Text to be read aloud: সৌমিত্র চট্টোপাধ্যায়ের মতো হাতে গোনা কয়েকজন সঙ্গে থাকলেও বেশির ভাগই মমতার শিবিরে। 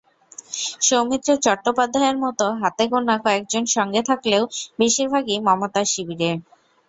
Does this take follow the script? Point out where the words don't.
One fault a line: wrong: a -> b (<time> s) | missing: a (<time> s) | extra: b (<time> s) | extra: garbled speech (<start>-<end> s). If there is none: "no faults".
no faults